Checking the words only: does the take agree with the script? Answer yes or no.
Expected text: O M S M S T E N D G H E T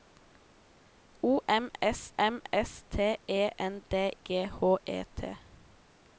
yes